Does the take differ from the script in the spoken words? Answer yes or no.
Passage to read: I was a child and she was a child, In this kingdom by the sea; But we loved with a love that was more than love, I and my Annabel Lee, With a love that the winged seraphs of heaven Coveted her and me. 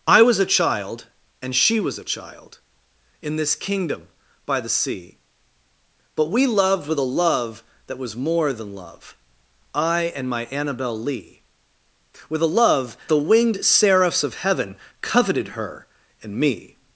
yes